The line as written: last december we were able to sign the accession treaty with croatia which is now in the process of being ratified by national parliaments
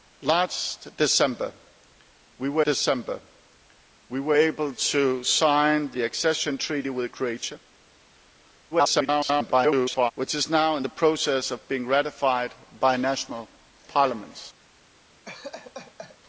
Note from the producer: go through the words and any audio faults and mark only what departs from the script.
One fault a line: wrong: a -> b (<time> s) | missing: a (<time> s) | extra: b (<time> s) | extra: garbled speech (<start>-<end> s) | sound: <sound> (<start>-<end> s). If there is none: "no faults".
extra: december we were (2.6 s)
extra: garbled speech (8.7-10.1 s)
sound: laugh (15.3-16.2 s)